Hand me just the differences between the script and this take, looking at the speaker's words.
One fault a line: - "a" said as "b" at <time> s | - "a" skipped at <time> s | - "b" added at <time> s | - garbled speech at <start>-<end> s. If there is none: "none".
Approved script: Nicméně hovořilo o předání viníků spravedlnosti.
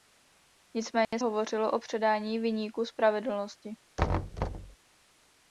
none